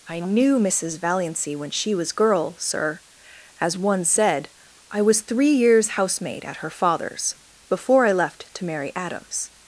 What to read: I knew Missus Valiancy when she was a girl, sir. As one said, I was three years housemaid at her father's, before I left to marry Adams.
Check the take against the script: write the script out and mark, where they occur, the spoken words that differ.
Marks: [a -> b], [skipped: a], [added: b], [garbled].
I knew Missus Valiancy when she was [skipped: a] girl, sir. As one said, I was three years housemaid at her father's, before I left to marry Adams.